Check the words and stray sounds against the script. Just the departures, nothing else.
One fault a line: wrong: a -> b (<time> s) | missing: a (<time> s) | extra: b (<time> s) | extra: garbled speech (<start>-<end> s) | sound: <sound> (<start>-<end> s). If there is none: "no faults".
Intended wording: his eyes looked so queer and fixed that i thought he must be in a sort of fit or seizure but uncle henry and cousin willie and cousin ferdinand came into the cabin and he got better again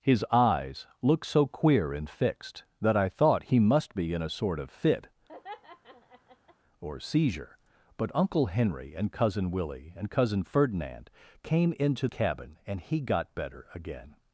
sound: laugh (5.3-6.6 s)
missing: the (12.1 s)